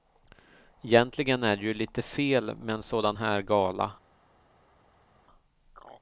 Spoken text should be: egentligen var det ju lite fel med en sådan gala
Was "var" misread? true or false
true